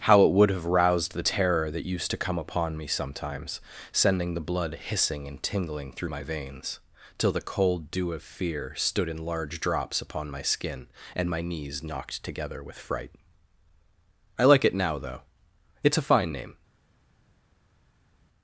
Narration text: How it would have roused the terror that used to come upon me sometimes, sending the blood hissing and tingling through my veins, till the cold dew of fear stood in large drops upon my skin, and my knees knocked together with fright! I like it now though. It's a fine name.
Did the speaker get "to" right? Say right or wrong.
right